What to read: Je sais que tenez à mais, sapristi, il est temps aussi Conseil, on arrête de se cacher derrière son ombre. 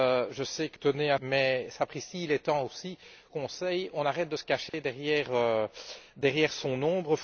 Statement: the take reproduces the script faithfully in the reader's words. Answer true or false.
true